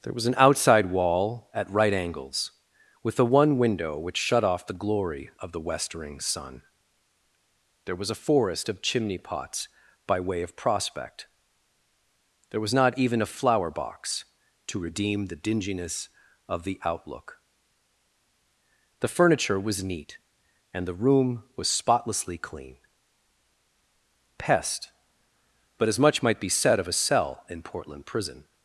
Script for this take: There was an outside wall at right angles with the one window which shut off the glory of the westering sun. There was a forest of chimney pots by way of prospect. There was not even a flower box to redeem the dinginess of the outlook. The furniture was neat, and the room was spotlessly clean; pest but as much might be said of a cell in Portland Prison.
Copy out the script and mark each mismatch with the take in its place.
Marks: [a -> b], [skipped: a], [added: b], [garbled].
There was an outside wall at right angles with the one window which shut off the glory of the westering sun. There was a forest of chimney pots by way of prospect. There was not even a flower box to redeem the dinginess of the outlook. The furniture was neat, and the room was spotlessly clean; pest but as much might be said of a cell in Portland Prison.